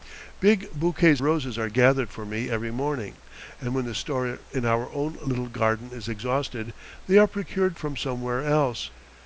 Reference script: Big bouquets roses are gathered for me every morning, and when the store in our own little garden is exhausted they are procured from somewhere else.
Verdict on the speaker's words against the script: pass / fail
pass